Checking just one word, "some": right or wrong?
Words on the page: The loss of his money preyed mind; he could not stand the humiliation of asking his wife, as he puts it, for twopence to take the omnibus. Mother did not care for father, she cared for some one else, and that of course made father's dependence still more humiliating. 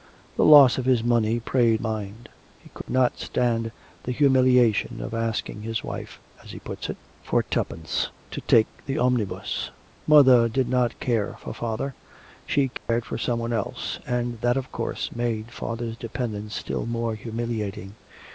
right